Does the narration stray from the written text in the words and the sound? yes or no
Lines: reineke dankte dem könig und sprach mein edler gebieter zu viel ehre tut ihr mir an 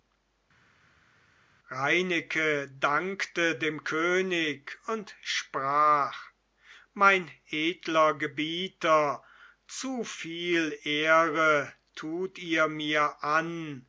no